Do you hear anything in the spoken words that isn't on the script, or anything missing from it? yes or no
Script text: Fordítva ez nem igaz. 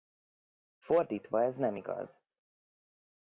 no